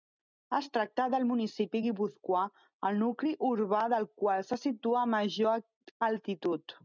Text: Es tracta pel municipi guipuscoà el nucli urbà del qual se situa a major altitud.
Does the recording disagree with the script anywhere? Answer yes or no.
yes